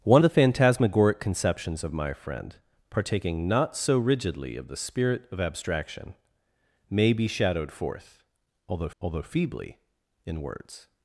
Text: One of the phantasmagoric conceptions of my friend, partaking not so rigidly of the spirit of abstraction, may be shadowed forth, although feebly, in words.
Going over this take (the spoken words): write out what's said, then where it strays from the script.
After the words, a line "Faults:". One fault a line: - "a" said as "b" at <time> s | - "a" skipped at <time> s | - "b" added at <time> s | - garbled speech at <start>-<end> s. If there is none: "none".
One the phantasmagoric conceptions of my friend, partaking not so rigidly of the spirit of abstraction, may be shadowed forth, although although feebly, in words.
Faults:
- "of" skipped at 0.2 s
- "although" added at 9.0 s